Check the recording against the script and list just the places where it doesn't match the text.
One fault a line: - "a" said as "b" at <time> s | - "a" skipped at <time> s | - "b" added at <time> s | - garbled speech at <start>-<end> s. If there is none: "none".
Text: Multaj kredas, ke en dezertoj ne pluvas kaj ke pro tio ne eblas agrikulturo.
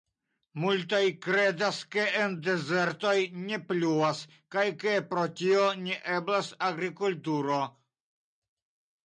none